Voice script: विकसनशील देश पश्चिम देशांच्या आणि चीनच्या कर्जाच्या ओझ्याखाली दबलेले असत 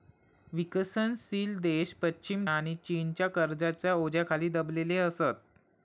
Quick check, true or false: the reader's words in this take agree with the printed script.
false